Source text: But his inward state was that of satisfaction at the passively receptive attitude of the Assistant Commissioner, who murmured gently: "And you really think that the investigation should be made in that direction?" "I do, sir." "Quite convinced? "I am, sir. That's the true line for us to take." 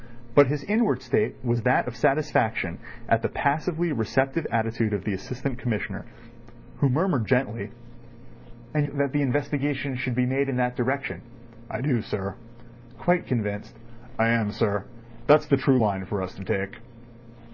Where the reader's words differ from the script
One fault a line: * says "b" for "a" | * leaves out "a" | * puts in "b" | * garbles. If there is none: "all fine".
* leaves out "you really think"